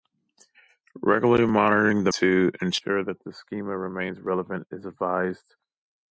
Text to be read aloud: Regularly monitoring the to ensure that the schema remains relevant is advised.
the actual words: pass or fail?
pass